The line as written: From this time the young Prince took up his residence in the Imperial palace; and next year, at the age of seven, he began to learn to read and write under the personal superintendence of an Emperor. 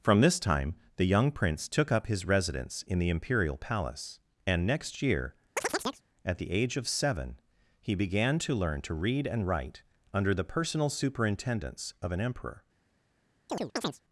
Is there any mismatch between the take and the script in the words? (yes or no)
no